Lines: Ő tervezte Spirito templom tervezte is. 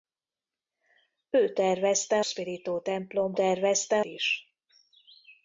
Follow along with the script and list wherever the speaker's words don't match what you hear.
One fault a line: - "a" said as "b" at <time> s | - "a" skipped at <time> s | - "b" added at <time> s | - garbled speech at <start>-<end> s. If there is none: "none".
none